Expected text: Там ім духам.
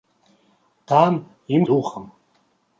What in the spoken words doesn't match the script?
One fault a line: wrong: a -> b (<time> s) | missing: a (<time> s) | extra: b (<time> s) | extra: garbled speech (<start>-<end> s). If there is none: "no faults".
no faults